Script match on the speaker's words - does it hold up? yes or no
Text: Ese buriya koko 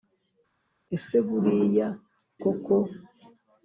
yes